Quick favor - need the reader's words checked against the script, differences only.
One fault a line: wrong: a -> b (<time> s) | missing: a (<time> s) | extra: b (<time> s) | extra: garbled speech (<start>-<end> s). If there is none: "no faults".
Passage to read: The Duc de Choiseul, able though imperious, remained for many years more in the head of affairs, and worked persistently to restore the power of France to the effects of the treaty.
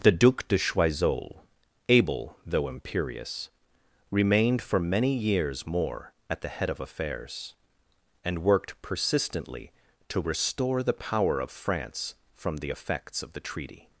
wrong: in -> at (6.3 s)
wrong: to -> from (12.3 s)